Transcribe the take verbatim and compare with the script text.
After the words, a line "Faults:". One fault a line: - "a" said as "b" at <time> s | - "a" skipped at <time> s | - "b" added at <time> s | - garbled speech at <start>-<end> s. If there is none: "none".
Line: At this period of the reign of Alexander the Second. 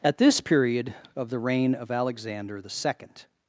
At this period of the reign of Alexander the Second.
Faults:
none